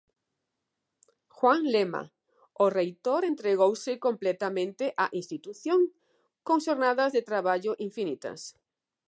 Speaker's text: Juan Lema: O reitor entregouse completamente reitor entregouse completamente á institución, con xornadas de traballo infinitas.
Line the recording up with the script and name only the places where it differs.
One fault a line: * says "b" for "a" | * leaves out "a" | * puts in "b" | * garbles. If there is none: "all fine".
* leaves out "reitor entregouse completamente"